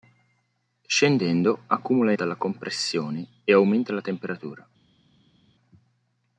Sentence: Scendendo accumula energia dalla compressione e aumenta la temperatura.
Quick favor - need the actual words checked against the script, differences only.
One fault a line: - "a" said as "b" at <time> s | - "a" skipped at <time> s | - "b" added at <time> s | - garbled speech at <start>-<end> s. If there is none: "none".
- "energia" skipped at 2.1 s